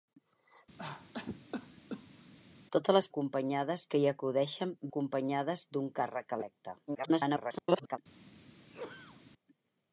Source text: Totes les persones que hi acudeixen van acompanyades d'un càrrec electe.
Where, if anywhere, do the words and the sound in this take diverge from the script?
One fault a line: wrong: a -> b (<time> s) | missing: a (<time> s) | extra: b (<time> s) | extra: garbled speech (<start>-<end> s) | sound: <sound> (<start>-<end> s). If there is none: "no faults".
sound: cough (0.8-2.3 s)
wrong: persones -> acompanyades (3.1 s)
missing: van (4.8 s)
extra: garbled speech (6.9-8.0 s)
sound: sneeze (8.6-9.2 s)